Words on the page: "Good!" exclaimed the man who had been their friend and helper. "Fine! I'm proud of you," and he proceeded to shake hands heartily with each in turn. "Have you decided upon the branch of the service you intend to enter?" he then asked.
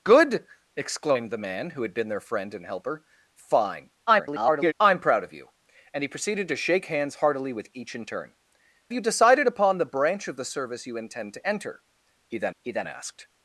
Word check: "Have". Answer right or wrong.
wrong